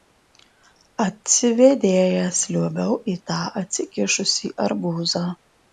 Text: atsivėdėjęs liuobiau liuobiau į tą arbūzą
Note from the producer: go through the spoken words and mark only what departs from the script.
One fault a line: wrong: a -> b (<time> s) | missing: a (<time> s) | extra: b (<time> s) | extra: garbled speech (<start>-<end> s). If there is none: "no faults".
missing: liuobiau (3.0 s)
extra: atsikišusį (3.6 s)